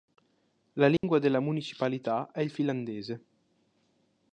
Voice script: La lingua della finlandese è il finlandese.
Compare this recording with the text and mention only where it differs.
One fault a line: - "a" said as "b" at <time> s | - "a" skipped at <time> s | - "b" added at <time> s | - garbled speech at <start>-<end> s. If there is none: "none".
- "finlandese" said as "municipalità" at 1.4 s